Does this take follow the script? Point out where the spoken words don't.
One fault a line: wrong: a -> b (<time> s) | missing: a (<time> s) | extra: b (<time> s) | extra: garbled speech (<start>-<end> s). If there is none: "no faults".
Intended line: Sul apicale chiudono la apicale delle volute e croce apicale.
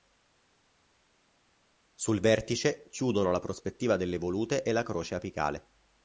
wrong: apicale -> vertice (2.2 s)
wrong: apicale -> prospettiva (3.4 s)
extra: la (4.7 s)